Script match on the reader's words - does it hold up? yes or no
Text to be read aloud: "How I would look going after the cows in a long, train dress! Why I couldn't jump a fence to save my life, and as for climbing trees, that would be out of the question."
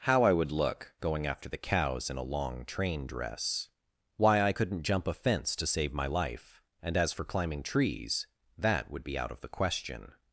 yes